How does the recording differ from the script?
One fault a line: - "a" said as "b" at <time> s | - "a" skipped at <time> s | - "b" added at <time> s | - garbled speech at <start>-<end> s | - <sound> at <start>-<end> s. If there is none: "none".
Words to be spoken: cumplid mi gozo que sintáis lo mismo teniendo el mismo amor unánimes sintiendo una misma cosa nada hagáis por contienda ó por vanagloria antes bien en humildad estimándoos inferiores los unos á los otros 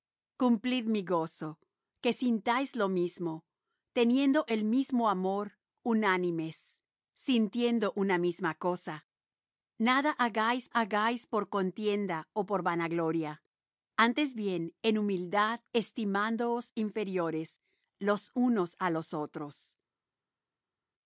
- "hagáis" added at 10.7 s